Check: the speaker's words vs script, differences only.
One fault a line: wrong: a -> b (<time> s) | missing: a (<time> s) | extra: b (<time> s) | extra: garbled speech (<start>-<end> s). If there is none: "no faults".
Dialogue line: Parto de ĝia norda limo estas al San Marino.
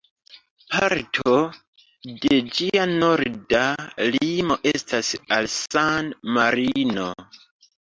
no faults